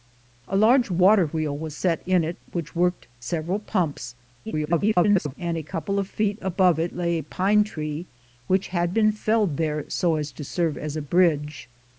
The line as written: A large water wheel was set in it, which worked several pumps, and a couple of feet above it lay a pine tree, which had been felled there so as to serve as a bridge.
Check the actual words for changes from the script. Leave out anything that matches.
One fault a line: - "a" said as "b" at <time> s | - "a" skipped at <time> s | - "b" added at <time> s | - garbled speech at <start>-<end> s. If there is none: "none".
- garbled speech at 4.5-5.3 s